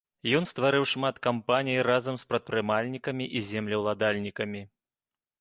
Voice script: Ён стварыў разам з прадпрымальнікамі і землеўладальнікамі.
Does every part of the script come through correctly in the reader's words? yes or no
no